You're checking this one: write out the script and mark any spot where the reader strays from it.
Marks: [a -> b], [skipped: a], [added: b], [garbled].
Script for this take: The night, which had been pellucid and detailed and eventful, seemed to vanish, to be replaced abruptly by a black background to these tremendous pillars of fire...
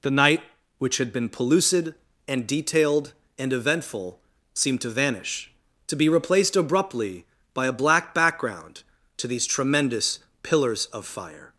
The night, which had been pellucid and detailed and eventful, seemed to vanish, to be replaced abruptly by a black background to these tremendous pillars of fire...